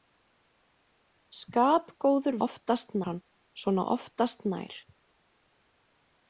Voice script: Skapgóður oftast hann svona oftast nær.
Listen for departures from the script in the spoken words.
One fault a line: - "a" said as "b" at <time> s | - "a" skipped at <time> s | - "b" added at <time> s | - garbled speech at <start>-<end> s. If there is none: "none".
none